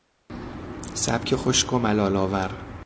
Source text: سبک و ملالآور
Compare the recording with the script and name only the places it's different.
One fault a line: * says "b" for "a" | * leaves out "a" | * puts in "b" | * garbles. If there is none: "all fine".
* puts in "خشک"